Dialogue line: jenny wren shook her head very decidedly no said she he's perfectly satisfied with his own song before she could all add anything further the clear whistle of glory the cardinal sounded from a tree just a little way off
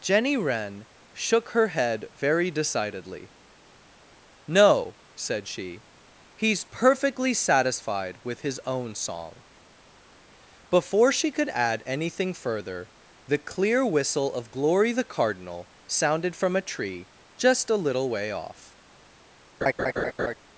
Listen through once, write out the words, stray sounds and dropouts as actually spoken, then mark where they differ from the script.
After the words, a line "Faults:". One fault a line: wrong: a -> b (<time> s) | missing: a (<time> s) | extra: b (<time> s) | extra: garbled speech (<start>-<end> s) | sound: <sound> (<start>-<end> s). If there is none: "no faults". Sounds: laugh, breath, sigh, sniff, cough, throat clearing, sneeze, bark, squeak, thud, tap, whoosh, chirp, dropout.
jenny wren shook her head very decidedly no said she he's perfectly satisfied with his own song before she could add anything further the clear whistle of glory the cardinal sounded from a tree just a little way off
Faults:
missing: all (11.5 s)
sound: laugh (19.6-20.3 s)